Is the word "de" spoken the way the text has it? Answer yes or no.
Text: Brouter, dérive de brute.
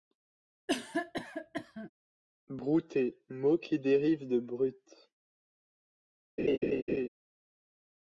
yes